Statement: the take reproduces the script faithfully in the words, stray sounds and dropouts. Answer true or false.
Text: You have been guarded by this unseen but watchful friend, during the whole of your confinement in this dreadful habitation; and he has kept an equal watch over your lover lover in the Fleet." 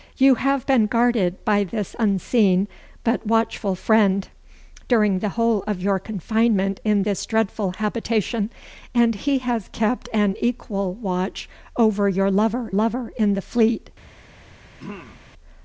false